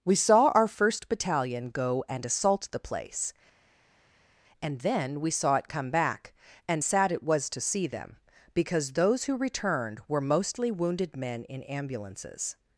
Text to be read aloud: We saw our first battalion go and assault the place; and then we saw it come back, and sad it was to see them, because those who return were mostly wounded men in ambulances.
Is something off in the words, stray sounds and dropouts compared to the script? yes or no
yes